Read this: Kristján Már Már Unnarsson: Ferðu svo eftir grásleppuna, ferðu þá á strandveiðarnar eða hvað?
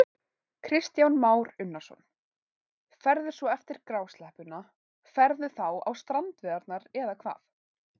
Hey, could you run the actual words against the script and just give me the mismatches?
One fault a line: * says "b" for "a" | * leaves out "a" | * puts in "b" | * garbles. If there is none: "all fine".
* leaves out "Már"